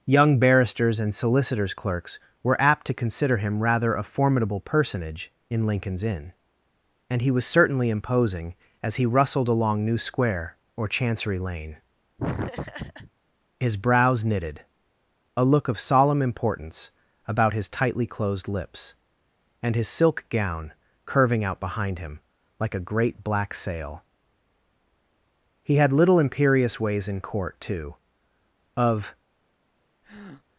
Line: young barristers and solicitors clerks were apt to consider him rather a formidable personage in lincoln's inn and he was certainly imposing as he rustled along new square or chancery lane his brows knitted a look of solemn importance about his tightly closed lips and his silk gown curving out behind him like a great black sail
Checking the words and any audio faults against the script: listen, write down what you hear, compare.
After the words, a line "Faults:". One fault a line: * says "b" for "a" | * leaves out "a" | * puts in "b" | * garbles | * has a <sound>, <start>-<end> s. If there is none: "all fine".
young barristers and solicitors clerks were apt to consider him rather a formidable personage in lincoln's inn and he was certainly imposing as he rustled along new square or chancery lane his brows knitted a look of solemn importance about his tightly closed lips and his silk gown curving out behind him like a great black sail he had little imperious ways in court too of
Faults:
* has a laugh, 12.2-13.1 s
* puts in "he had little imperious ways in court too of"
* has a breath, 30.0-30.4 s